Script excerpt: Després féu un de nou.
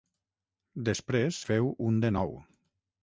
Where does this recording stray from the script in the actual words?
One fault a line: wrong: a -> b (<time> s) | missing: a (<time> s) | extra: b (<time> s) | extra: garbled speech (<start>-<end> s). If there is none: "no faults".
no faults